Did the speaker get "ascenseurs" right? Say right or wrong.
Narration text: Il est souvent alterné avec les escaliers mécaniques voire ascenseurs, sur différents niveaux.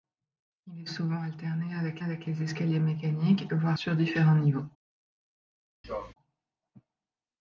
wrong